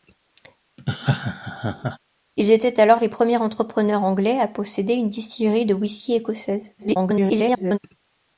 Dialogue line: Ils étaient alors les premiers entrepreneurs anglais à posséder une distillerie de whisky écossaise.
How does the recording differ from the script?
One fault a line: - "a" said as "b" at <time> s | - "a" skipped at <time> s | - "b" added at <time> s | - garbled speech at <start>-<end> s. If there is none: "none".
- garbled speech at 6.8-7.8 s